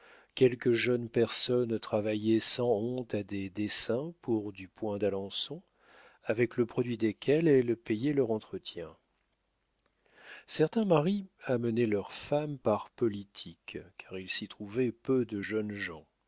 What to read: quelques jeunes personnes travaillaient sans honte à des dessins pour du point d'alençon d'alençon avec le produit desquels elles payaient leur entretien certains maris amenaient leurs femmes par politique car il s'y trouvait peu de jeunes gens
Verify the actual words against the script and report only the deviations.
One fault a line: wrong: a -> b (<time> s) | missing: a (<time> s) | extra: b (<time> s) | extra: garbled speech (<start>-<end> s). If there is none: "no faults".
missing: d'alençon (5.6 s)